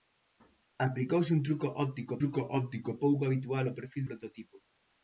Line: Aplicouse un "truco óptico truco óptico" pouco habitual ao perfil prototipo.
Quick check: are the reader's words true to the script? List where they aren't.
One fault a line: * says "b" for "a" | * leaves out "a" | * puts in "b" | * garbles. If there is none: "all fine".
all fine